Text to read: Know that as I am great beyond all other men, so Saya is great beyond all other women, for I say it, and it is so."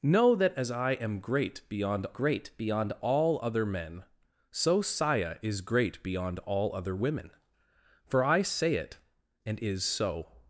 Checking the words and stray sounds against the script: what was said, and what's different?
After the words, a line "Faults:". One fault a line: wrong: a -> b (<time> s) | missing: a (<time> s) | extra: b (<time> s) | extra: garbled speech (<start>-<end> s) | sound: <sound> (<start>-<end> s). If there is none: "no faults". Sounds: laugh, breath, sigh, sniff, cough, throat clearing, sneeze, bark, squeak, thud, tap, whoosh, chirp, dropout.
Know that as I am great beyond great beyond all other men, so Saya is great beyond all other women, for I say it, and is so."
Faults:
extra: great beyond (2.1 s)
missing: it (9.6 s)